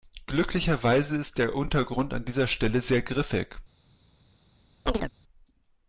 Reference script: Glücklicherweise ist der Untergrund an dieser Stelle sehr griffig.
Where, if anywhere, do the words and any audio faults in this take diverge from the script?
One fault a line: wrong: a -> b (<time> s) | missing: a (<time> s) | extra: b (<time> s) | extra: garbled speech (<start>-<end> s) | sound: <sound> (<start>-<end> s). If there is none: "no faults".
sound: chirp (4.9-5.1 s)